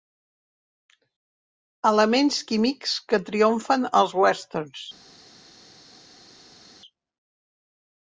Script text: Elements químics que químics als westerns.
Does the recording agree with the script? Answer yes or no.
no